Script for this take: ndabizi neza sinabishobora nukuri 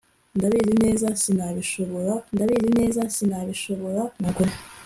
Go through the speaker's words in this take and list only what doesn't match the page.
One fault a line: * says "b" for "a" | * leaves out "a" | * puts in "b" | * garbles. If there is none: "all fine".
* puts in "ndabizi neza sinabishobora"